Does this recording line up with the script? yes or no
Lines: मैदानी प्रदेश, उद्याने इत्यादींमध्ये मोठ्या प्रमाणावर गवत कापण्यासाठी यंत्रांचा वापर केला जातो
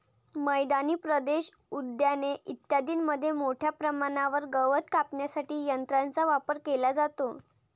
yes